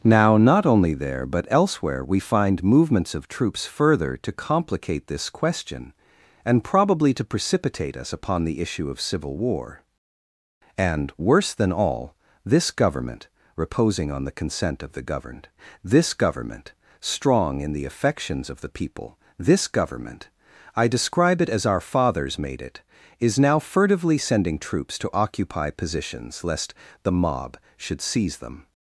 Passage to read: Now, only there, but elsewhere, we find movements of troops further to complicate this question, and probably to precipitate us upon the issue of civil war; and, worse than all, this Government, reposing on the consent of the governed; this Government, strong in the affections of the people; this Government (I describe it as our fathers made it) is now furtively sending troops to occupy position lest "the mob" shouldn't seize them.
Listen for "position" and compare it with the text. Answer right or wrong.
wrong